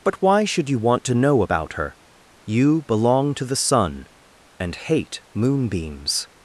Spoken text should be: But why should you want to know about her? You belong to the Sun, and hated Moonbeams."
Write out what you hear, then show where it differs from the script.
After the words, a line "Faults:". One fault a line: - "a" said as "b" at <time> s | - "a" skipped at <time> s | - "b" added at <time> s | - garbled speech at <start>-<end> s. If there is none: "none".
But why should you want to know about her? You belong to the Sun, and hate Moonbeams."
Faults:
- "hated" said as "hate" at 4.8 s